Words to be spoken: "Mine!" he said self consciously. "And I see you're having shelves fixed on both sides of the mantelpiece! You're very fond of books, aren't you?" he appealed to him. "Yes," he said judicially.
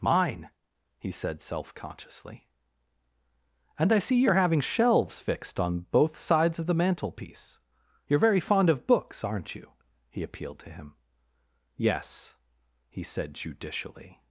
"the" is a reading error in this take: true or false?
false